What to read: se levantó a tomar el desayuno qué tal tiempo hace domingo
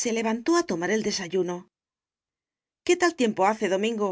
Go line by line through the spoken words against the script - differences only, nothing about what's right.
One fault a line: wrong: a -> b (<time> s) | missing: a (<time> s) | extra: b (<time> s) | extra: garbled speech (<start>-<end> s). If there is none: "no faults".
no faults